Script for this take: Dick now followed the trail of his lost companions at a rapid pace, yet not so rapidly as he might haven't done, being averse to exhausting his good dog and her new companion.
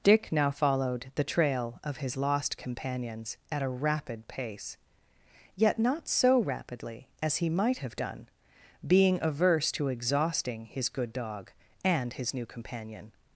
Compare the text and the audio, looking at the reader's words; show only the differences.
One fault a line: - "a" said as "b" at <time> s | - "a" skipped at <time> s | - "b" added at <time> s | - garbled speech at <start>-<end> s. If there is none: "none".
- "haven't" said as "have" at 7.8 s
- "her" said as "his" at 12.1 s